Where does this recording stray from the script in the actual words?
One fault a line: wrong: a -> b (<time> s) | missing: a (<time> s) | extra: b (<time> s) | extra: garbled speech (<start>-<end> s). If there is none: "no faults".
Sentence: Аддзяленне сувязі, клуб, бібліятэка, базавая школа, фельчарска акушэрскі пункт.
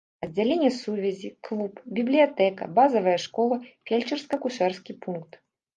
no faults